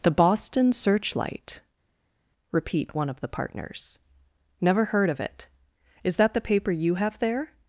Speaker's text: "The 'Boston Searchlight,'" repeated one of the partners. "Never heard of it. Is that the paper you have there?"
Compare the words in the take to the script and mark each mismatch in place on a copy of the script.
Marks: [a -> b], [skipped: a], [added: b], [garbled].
"The 'Boston Searchlight,'" [repeated -> repeat] one of the partners. "Never heard of it. Is that the paper you have there?"